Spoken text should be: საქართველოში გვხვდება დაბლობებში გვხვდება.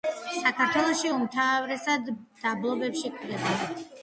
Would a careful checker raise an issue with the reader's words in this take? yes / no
yes